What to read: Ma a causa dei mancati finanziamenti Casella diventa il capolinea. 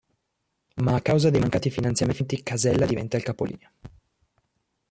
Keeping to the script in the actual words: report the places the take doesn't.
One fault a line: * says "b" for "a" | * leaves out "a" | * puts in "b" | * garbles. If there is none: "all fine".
all fine